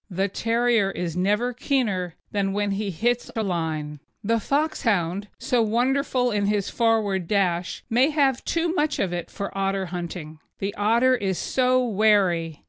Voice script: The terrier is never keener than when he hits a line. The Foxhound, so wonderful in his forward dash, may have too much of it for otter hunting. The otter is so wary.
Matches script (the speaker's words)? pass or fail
pass